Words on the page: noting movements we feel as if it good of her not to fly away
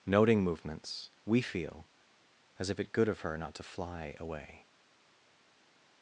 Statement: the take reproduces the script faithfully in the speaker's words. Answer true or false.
true